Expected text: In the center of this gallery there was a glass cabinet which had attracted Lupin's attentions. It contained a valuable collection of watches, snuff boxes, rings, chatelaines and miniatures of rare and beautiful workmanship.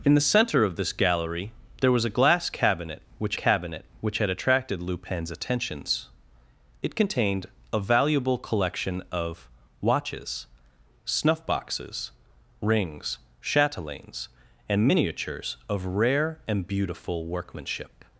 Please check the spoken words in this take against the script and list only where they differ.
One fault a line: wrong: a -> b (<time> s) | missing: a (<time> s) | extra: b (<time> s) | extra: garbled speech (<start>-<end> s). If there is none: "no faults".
extra: cabinet which (3.3 s)